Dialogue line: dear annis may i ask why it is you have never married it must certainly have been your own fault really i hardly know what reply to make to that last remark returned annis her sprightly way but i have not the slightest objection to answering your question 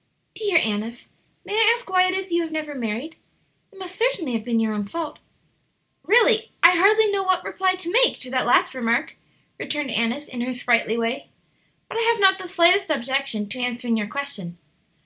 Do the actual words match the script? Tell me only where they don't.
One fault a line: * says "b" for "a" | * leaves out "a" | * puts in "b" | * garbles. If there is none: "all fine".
* puts in "in"